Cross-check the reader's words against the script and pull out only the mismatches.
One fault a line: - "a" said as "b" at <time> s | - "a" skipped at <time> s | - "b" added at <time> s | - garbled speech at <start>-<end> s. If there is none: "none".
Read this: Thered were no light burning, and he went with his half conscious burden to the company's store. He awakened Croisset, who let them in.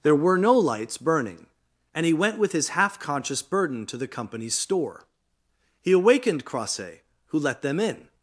- "Thered" said as "There" at 0.0 s
- "light" said as "lights" at 0.6 s